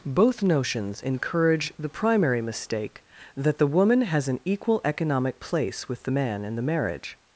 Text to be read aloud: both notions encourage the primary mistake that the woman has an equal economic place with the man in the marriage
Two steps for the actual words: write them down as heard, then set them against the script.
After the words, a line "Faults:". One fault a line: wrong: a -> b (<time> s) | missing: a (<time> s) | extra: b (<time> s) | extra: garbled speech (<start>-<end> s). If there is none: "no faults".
both notions encourage the primary mistake that the woman has an equal economic place with the man in the marriage
Faults:
no faults